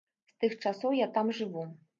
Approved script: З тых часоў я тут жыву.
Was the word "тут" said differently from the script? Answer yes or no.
yes